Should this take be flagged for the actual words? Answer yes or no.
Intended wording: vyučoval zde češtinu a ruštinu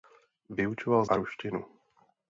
yes